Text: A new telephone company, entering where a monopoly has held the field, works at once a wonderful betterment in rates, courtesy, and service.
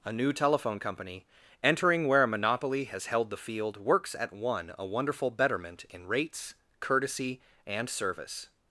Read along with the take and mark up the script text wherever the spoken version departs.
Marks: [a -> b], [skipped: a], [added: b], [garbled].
A new telephone company, entering where a monopoly has held the field, works at [once -> one] a wonderful betterment in rates, courtesy, and service.